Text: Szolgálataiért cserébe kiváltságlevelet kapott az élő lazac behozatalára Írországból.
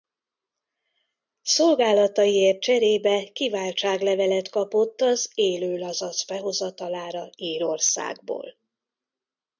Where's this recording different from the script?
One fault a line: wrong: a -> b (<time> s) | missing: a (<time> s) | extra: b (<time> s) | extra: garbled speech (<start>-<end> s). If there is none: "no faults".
no faults